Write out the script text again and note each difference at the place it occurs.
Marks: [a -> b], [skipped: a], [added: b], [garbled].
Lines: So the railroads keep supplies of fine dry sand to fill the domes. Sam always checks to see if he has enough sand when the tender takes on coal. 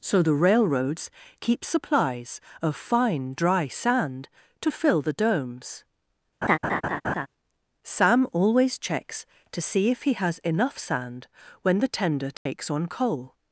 So the railroads keep supplies of fine dry sand to fill the domes. Sam always checks to see if he has enough sand when the tender takes on coal.